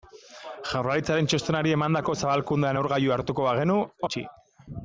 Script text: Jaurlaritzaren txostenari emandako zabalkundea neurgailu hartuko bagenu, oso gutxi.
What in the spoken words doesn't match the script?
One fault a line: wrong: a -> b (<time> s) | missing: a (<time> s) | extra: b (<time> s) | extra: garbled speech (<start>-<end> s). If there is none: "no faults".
missing: oso (3.8 s)